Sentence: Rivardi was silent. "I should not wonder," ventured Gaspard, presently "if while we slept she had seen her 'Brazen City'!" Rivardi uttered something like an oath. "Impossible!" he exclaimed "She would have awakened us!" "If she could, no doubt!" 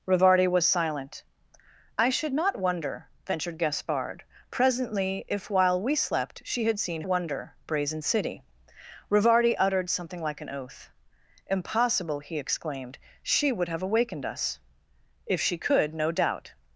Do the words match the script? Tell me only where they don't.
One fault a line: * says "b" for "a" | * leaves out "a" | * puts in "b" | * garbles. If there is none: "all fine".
* says "wonder" for "her"